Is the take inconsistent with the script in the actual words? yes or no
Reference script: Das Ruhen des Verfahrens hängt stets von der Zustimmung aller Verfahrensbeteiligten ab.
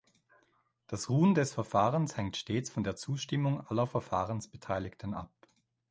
no